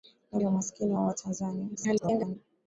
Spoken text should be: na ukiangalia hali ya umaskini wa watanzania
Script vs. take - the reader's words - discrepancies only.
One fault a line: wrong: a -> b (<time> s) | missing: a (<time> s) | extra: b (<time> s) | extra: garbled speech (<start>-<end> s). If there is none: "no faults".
missing: ukiangalia hali (0.4 s)
extra: garbled speech (1.7-2.4 s)